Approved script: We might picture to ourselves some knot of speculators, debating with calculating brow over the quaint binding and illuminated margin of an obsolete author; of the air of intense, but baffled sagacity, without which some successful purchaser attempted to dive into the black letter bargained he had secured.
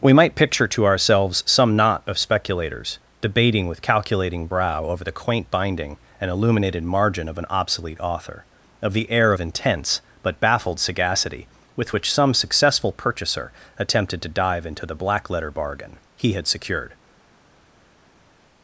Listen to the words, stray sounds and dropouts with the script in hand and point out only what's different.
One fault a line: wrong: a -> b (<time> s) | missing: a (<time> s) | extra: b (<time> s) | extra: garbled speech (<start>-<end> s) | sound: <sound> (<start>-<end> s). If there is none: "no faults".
wrong: without -> with (11.8 s)
wrong: bargained -> bargain (15.5 s)